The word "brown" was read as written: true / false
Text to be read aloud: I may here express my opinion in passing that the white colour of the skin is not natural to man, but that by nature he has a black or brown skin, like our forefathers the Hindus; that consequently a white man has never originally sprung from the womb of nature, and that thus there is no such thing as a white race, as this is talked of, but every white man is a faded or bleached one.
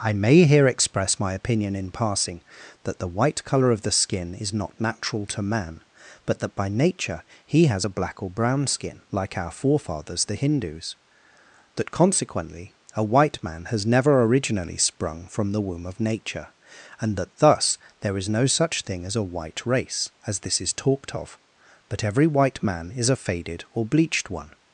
true